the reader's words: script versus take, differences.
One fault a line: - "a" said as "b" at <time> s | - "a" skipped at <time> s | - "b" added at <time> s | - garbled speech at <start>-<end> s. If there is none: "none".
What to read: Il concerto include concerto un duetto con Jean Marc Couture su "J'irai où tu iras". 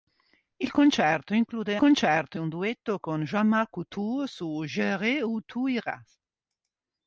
none